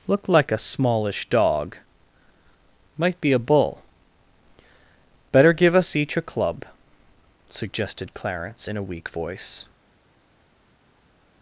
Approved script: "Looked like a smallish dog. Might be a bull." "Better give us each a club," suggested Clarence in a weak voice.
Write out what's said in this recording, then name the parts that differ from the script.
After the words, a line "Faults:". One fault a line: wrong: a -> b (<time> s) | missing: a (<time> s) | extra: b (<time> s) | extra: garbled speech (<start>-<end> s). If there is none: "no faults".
"Looked like a smallish dog. Might be a bull." "Better give us each a club," suggested Clarence in a weak voice.
Faults:
no faults